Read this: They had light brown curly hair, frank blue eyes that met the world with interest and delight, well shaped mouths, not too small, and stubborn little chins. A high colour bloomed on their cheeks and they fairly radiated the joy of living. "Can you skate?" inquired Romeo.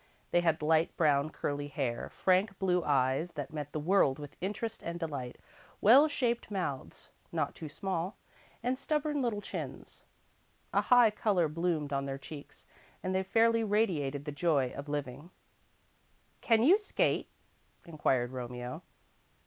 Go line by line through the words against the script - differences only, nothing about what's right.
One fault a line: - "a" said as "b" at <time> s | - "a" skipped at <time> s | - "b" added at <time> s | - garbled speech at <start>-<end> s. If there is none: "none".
none